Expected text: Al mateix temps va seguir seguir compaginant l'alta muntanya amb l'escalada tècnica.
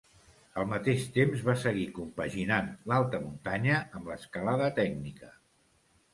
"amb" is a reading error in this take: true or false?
false